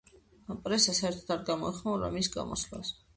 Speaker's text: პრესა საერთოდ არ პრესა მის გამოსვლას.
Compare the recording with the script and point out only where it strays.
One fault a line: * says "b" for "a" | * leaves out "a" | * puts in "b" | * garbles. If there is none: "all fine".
* says "გამოეხმაურა" for "პრესა"